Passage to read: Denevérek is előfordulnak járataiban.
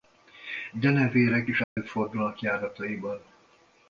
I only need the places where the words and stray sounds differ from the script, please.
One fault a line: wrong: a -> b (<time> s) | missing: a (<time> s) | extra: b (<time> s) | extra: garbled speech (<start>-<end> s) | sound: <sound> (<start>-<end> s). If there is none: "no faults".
sound: dropout (1.6-1.8 s)